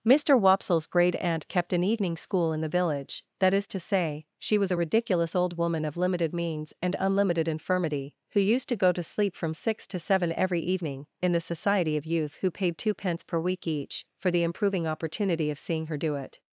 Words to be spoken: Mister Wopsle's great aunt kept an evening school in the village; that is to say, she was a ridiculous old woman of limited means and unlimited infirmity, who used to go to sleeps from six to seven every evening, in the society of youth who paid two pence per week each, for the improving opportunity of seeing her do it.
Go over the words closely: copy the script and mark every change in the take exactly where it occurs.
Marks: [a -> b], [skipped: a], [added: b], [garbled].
Mister Wopsle's great aunt kept an evening school in the village; that is to say, she was a ridiculous old woman of limited means and unlimited infirmity, who used to go to [sleeps -> sleep] from six to seven every evening, in the society of youth who paid two pence per week each, for the improving opportunity of seeing her do it.